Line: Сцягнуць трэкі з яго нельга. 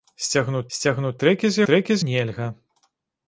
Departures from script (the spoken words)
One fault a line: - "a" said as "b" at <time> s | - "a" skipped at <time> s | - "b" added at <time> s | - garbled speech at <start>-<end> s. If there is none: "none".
- "сцягнуць" added at 0.8 s
- "яго" said as "трэкі" at 1.7 s